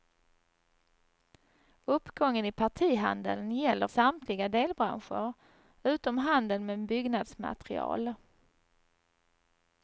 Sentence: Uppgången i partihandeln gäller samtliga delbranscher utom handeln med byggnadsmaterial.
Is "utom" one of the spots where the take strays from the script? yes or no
no